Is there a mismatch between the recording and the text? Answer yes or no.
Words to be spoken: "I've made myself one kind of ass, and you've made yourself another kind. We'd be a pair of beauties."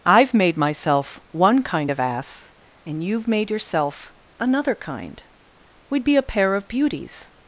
no